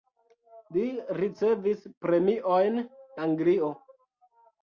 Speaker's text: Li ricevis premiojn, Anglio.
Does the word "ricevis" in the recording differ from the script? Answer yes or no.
no